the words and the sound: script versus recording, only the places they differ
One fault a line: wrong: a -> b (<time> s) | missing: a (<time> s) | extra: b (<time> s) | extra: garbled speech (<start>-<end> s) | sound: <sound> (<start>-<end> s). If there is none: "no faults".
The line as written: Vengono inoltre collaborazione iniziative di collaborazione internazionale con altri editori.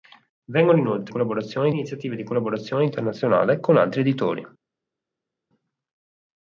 no faults